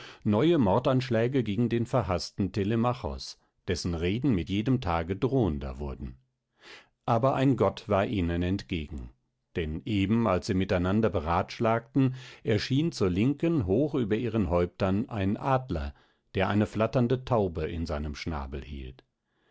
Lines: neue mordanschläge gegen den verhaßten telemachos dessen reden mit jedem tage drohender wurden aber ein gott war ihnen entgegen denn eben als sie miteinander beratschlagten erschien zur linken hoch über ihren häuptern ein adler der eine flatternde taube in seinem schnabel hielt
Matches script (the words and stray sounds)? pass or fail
pass